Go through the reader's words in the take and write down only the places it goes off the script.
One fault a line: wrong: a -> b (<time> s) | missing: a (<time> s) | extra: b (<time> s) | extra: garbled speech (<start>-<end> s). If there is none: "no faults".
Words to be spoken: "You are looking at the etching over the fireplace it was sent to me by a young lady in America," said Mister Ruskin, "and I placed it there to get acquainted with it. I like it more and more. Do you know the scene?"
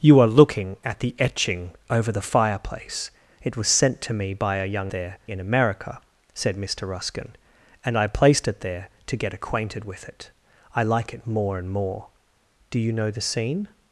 wrong: lady -> there (4.9 s)